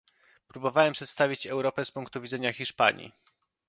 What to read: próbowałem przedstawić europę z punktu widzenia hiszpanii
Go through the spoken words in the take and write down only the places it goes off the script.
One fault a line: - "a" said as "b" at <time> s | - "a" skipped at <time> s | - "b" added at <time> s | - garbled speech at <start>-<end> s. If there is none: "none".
none